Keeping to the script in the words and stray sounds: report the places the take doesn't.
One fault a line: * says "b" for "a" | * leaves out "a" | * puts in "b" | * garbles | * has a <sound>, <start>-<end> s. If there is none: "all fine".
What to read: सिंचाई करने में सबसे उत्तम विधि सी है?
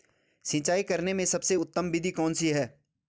* puts in "कौन"